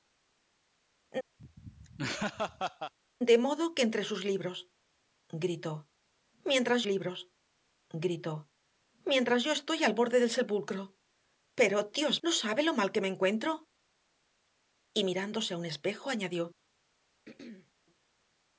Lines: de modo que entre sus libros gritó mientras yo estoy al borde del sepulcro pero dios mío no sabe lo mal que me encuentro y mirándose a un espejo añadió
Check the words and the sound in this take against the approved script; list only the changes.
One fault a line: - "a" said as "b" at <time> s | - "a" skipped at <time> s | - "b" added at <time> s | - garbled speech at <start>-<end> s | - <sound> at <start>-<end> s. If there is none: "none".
- laugh at 1.4-2.9 s
- "libros gritó mientras" added at 6.9 s
- "mío" skipped at 12.2 s
- throat clearing at 17.2-17.7 s